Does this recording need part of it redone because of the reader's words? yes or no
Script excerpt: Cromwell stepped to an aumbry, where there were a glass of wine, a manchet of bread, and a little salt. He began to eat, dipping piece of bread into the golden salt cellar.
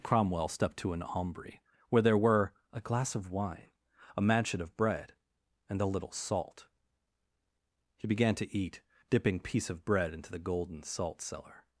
no